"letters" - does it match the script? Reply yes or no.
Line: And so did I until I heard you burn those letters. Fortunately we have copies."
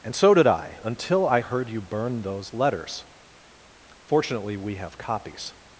yes